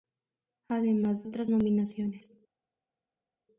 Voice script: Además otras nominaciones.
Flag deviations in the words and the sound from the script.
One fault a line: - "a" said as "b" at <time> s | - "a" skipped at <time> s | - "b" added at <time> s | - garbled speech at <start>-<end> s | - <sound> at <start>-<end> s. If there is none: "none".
none